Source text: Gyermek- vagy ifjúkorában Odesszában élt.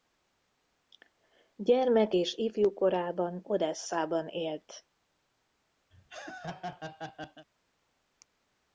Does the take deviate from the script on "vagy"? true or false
true